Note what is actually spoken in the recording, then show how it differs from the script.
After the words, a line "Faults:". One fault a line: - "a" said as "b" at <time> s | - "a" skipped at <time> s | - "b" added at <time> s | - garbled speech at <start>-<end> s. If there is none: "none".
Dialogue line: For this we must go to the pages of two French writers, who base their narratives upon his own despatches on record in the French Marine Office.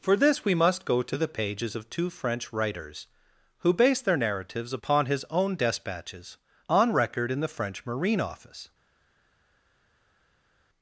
For this we must go to the pages of two French writers, who base their narratives upon his own despatches on record in the French Marine Office.
Faults:
none